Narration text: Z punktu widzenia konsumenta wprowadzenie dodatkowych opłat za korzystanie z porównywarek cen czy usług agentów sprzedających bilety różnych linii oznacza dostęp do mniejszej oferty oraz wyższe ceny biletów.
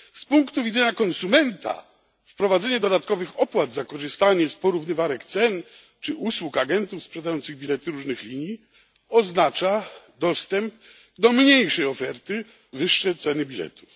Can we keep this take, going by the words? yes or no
no